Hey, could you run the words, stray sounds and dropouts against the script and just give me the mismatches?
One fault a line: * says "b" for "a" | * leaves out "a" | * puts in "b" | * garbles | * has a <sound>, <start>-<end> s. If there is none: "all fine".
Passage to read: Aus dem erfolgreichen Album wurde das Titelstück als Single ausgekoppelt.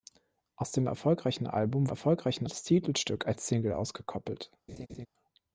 * says "erfolgreichen" for "wurde"
* has a laugh, 4.7-5.1 s